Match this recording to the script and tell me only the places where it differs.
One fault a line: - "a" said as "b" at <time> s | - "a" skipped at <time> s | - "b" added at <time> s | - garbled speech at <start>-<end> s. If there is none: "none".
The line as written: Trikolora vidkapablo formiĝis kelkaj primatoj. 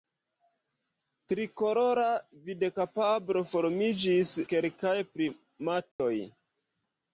none